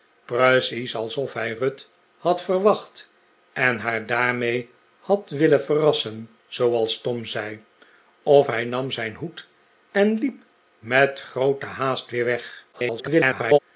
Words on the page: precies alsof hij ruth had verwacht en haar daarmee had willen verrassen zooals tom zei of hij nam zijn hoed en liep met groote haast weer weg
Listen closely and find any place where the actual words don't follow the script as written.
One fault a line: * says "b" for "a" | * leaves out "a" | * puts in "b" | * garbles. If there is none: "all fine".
* garbles